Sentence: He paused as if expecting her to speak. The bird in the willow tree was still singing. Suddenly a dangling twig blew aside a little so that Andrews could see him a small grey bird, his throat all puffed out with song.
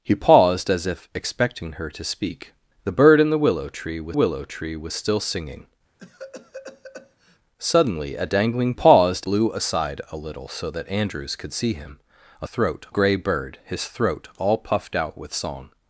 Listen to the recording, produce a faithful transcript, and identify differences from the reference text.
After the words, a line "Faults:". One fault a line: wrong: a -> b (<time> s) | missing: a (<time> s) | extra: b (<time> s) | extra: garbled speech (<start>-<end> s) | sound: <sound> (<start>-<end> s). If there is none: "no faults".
He paused as if expecting her to speak. The bird in the willow tree was willow tree was still singing. Suddenly a dangling paused blew aside a little so that Andrews could see him a throat grey bird, his throat all puffed out with song.
Faults:
extra: willow tree was (4.1 s)
sound: cough (6.0-7.4 s)
wrong: twig -> paused (8.7 s)
wrong: small -> throat (12.4 s)